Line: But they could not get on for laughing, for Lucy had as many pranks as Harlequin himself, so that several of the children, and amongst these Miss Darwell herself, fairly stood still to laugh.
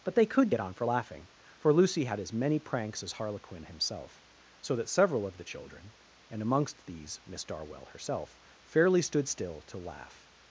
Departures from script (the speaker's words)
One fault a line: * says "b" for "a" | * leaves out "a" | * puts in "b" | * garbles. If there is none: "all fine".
* leaves out "not"